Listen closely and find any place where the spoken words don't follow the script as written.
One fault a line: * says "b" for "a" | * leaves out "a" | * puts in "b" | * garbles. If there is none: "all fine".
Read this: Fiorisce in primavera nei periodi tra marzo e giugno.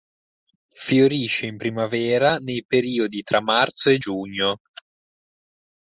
all fine